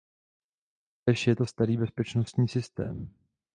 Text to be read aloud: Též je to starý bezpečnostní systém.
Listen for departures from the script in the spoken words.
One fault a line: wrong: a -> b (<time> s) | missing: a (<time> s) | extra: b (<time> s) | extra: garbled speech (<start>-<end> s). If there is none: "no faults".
no faults